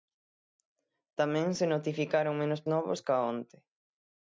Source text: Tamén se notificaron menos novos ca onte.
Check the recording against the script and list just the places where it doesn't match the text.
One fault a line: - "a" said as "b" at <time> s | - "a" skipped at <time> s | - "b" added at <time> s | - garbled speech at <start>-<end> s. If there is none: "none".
none